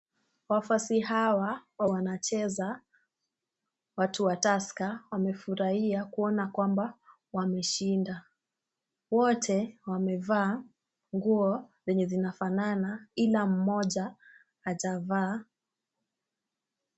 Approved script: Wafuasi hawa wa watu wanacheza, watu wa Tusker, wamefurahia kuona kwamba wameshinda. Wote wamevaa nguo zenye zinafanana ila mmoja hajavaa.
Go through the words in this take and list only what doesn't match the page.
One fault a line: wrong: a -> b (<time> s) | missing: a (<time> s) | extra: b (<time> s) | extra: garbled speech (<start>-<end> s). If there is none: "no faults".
missing: watu (1.9 s)